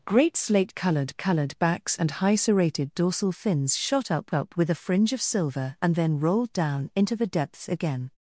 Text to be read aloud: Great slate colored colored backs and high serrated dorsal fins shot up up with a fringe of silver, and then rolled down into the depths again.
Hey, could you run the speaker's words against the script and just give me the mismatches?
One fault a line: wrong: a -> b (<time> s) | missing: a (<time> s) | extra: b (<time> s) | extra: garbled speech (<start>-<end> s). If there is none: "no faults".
no faults